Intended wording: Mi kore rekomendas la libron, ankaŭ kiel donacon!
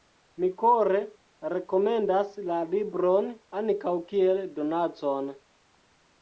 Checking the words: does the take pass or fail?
pass